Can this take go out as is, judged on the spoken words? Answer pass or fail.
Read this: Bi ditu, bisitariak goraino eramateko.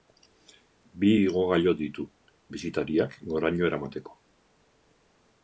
fail